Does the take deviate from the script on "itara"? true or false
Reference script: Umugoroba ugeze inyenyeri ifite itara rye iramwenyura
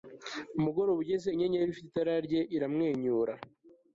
false